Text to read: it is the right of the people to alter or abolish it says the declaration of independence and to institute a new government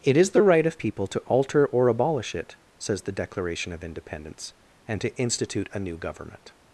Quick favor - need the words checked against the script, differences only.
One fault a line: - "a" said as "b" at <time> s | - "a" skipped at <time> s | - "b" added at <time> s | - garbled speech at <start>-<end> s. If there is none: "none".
- "the" skipped at 0.8 s